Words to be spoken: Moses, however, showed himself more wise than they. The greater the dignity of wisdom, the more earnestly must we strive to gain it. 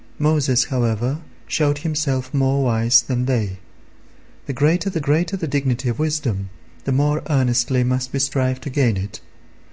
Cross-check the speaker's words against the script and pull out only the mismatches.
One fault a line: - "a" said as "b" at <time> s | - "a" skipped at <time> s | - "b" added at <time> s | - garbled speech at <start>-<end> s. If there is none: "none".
- "greater the" added at 5.0 s